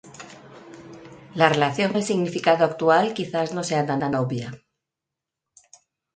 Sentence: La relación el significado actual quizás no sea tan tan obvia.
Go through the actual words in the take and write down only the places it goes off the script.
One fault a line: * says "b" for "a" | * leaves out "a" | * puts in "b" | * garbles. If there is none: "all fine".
all fine